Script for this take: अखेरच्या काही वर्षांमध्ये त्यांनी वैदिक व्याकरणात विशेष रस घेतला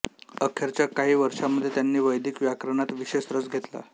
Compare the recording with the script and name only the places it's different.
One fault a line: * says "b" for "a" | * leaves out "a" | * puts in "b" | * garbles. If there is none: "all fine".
all fine